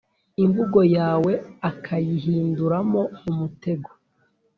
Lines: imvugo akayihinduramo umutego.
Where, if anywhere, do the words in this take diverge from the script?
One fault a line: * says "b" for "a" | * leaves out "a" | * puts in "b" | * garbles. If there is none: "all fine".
* puts in "yawe"